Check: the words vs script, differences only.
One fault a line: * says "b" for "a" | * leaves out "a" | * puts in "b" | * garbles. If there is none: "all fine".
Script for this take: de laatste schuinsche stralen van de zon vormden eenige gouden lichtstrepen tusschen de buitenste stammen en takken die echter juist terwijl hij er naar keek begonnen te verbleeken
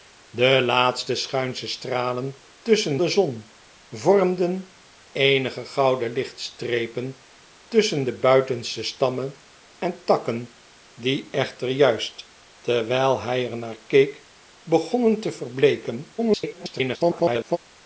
* says "tusschen" for "van"
* garbles